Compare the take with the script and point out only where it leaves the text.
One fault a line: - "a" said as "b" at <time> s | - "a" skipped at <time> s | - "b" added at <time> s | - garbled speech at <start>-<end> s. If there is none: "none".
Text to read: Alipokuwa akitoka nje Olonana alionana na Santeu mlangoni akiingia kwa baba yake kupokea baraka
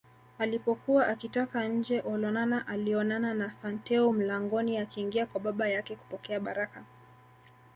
none